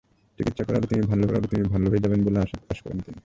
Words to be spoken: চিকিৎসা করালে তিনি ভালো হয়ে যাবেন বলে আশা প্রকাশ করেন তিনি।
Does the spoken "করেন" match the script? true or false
true